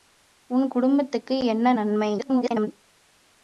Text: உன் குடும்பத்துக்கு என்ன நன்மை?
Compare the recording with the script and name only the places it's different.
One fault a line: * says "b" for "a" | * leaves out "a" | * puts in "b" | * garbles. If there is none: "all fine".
* garbles